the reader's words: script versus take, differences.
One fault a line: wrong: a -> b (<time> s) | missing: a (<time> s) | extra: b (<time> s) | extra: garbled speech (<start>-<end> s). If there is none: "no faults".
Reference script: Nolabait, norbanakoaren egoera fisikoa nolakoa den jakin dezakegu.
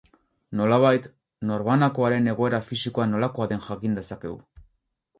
no faults